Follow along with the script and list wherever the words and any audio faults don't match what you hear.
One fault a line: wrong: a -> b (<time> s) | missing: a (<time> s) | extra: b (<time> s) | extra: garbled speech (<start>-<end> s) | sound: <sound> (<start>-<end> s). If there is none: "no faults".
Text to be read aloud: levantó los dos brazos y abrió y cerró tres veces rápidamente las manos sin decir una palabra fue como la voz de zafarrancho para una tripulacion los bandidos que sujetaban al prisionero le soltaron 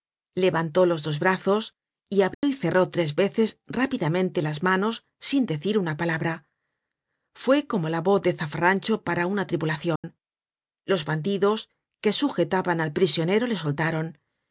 sound: dropout (2.3-2.4 s)
sound: dropout (10.0-10.0 s)